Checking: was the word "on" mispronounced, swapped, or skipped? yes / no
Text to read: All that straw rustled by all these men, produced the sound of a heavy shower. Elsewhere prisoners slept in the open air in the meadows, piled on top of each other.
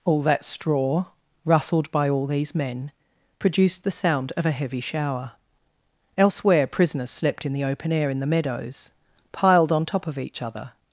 no